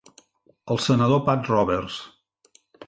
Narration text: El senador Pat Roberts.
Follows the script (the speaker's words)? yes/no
yes